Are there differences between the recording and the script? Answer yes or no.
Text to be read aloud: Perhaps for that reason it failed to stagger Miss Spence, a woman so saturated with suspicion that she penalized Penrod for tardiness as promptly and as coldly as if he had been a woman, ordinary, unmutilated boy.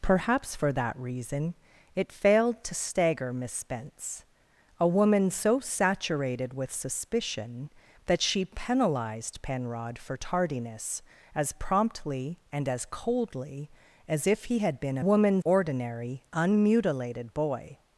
no